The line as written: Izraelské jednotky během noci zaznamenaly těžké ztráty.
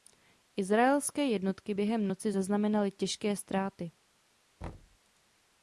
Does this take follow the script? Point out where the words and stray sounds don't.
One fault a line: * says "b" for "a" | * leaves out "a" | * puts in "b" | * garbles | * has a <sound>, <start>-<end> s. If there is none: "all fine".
* has a thud, 4.6-5.0 s